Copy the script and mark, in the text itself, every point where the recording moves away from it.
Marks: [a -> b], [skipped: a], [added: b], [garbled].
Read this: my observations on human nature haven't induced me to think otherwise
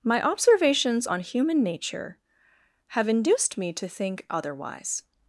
my observations on human nature [haven't -> have] induced me to think otherwise